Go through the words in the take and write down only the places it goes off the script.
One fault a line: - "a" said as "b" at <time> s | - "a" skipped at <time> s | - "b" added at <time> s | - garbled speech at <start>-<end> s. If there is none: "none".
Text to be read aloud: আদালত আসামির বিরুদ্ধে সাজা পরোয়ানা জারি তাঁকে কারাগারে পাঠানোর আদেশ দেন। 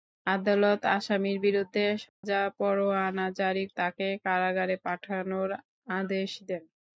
none